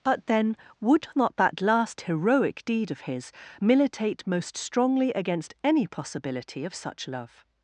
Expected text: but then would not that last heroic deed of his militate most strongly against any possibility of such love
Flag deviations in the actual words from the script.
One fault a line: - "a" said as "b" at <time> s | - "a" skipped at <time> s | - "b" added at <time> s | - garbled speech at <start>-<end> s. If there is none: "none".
none